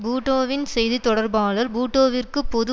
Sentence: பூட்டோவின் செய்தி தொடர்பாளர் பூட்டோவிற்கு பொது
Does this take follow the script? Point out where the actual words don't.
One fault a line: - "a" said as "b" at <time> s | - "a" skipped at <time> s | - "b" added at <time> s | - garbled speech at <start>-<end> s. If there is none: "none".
none